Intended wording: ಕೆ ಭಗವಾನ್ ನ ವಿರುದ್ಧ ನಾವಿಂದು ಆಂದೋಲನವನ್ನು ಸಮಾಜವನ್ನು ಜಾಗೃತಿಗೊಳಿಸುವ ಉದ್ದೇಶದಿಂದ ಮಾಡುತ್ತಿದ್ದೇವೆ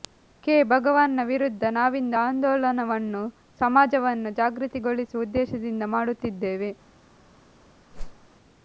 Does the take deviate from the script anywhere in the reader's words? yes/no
no